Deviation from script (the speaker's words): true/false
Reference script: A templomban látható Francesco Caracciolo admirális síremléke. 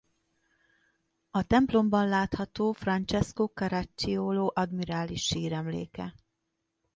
false